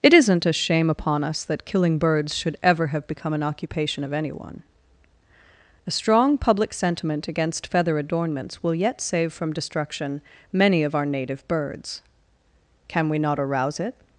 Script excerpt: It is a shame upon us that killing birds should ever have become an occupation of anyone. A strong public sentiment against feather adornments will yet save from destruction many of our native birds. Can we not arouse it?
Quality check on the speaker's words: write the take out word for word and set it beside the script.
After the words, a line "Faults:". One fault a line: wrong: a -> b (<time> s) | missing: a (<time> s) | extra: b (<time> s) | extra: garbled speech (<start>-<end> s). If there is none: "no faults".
It isn't a shame upon us that killing birds should ever have become an occupation of anyone. A strong public sentiment against feather adornments will yet save from destruction many of our native birds. Can we not arouse it?
Faults:
wrong: is -> isn't (0.1 s)